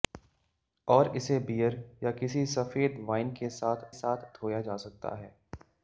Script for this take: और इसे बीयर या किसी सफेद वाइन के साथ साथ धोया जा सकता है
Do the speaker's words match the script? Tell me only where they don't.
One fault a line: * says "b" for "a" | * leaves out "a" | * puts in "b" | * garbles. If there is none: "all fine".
all fine